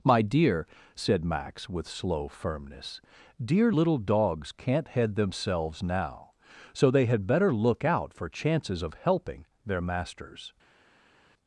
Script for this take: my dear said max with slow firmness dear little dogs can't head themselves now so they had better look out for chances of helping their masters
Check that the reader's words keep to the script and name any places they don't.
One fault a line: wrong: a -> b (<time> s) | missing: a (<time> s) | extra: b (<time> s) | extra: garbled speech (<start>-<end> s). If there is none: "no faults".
no faults